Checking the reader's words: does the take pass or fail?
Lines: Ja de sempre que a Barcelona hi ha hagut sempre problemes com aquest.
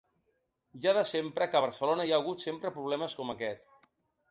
pass